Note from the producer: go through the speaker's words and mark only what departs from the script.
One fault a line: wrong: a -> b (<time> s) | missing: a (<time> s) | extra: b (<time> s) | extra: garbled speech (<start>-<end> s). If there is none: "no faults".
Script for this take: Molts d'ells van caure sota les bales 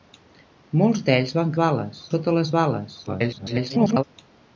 wrong: caure -> bales (1.6 s)
extra: garbled speech (3.1-4.0 s)